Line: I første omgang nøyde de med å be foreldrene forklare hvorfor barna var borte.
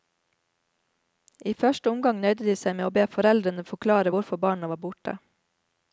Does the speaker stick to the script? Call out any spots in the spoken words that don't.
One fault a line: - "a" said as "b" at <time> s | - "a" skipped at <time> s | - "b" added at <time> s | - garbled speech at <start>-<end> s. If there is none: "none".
- "seg" added at 2.6 s